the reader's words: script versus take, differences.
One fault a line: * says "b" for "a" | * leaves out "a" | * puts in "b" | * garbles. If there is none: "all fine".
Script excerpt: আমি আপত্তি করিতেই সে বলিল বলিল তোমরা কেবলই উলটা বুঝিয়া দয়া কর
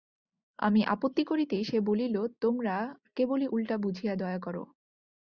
* leaves out "বলিল"